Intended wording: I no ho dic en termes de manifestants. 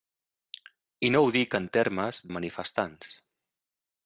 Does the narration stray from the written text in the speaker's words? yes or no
no